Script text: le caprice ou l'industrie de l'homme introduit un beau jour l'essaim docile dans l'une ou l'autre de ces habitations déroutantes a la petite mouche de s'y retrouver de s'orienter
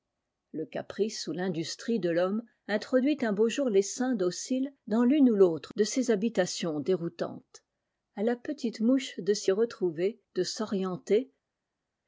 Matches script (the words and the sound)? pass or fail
pass